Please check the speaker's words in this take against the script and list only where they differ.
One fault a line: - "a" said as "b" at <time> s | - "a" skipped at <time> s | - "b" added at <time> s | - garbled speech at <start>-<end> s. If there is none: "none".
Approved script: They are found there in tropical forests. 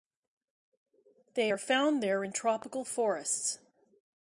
none